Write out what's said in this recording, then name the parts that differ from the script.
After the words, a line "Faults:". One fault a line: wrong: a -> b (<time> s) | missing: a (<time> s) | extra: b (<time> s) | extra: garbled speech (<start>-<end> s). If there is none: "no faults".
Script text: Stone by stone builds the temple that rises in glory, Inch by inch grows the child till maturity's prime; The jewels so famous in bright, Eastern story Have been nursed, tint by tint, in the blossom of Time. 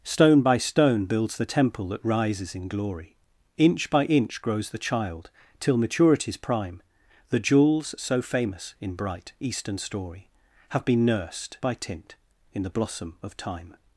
Stone by stone builds the temple that rises in glory, Inch by inch grows the child till maturity's prime; The jewels so famous in bright, Eastern story Have been nursed, by tint, in the blossom of Time.
Faults:
missing: tint (11.6 s)